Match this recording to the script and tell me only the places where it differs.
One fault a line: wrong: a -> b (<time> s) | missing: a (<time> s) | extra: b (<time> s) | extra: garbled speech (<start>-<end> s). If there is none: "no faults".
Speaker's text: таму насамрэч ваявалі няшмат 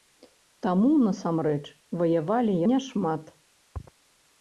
no faults